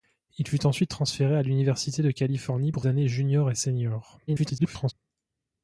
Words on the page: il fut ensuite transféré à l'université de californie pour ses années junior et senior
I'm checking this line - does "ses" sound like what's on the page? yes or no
no